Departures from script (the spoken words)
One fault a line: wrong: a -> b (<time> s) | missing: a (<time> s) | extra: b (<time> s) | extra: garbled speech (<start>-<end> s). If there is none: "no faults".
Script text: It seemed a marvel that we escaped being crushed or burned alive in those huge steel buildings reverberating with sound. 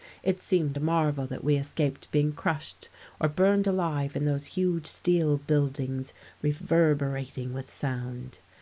no faults